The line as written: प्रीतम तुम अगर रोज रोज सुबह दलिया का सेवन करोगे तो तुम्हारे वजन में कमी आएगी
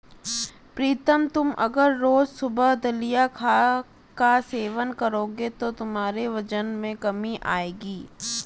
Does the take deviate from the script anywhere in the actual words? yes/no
yes